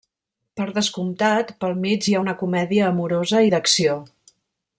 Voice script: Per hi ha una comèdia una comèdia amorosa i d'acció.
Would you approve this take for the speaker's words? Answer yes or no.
no